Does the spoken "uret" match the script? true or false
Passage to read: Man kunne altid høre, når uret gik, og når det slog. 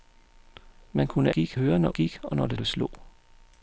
false